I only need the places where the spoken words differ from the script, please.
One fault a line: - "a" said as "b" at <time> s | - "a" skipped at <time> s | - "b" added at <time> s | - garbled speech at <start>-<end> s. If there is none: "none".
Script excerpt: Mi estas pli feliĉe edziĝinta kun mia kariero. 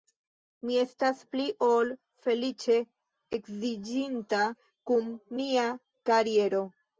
- "ol" added at 1.7 s